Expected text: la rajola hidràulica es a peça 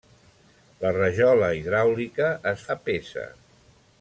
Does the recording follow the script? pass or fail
pass